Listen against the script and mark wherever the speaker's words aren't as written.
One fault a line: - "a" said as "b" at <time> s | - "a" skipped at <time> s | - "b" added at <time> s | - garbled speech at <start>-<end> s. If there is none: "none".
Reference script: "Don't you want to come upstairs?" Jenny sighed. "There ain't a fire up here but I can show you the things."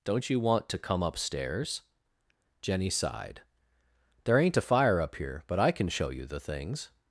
none